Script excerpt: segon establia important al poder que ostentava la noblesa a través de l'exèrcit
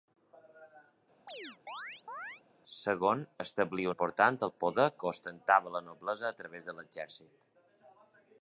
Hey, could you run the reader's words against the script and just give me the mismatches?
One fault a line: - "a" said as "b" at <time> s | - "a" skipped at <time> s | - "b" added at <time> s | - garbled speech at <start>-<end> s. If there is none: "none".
none